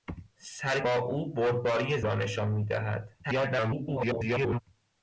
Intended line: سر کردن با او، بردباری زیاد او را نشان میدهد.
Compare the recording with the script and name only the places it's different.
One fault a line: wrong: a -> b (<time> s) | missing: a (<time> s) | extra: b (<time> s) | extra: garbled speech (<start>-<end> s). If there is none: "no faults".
missing: کردن (0.8 s)
missing: زیاد او (2.0 s)
extra: garbled speech (3.2-4.6 s)